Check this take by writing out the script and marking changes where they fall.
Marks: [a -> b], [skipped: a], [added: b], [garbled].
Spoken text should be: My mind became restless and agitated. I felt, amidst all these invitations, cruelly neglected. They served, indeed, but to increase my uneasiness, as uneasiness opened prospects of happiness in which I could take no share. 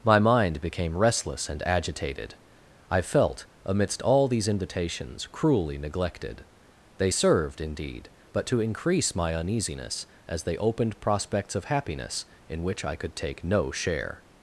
My mind became restless and agitated. I felt, amidst all these invitations, cruelly neglected. They served, indeed, but to increase my uneasiness, as [uneasiness -> they] opened prospects of happiness in which I could take no share.